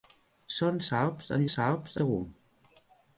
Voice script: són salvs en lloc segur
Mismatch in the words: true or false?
true